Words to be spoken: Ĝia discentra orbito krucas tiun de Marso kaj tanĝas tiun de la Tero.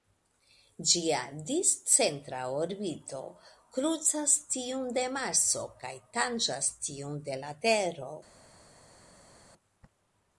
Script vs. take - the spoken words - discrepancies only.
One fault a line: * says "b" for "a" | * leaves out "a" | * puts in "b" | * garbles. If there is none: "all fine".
all fine